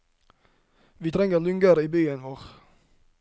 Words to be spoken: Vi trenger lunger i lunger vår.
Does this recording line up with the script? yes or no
no